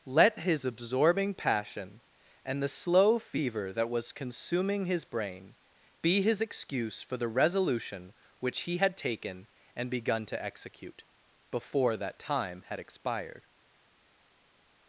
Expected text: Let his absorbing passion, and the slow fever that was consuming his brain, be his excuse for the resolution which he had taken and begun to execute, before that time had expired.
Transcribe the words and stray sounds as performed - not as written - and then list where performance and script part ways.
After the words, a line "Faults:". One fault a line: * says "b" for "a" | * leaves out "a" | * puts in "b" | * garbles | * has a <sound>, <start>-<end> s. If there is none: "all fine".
Let his absorbing passion, and the slow fever that was consuming his brain, be his excuse for the resolution which he had taken and begun to execute, before that time had expired.
Faults:
all fine